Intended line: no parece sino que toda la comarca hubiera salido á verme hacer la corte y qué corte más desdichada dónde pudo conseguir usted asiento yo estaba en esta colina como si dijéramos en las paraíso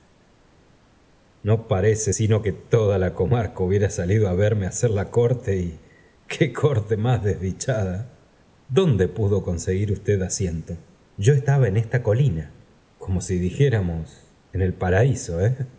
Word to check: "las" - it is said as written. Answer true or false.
false